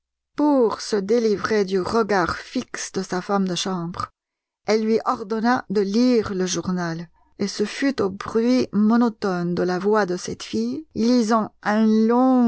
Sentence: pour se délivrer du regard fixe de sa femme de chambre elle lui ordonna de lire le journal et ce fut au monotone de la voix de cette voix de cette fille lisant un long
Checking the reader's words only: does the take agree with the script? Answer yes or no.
no